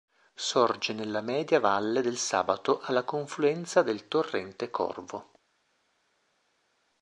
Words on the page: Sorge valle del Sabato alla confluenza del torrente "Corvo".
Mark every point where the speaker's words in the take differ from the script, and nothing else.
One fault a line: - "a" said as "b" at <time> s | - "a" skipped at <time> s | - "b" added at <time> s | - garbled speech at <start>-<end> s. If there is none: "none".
- "nella media" added at 0.9 s